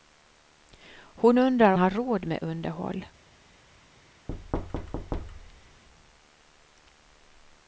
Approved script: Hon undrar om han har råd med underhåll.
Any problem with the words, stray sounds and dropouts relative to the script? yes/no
yes